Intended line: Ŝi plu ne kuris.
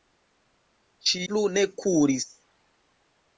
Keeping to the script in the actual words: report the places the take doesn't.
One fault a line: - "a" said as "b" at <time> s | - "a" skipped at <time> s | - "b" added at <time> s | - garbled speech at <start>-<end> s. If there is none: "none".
none